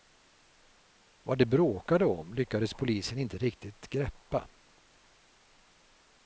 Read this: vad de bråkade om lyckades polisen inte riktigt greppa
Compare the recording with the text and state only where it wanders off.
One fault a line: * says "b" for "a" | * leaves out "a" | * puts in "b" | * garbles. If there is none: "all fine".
all fine